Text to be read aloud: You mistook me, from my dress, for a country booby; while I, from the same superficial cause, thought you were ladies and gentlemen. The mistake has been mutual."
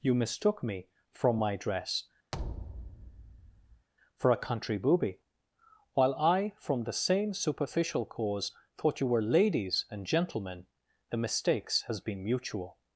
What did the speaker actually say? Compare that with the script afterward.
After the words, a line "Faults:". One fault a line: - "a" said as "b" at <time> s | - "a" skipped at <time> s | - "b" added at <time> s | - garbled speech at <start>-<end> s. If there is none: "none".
You mistook me, from my dress, for a country booby; while I, from the same superficial cause, thought you were ladies and gentlemen. The mistakes has been mutual."
Faults:
- "mistake" said as "mistakes" at 11.2 s